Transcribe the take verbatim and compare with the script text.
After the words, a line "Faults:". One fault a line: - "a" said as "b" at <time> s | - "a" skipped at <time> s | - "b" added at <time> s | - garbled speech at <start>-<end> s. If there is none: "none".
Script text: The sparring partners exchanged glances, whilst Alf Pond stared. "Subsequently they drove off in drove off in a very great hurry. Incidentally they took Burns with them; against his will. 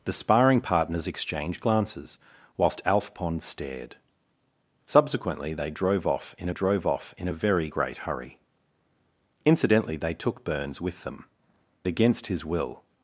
The sparring partners exchanged glances, whilst Alf Pond stared. "Subsequently they drove off in drove off in a very great hurry. Incidentally they took Burns with them; against his will.
Faults:
none